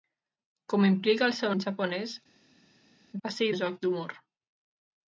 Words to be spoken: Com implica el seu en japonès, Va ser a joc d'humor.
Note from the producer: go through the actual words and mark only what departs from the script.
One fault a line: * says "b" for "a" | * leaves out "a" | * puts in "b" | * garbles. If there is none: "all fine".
all fine